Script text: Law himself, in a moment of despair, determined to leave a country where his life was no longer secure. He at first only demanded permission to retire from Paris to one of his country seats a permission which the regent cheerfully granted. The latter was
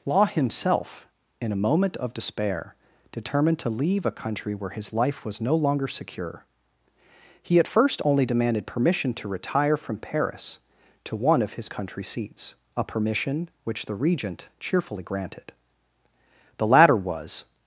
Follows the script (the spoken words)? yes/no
yes